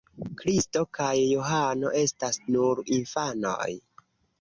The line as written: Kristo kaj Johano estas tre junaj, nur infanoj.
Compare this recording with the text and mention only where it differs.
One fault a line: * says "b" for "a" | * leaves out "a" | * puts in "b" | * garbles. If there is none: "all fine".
* leaves out "tre junaj"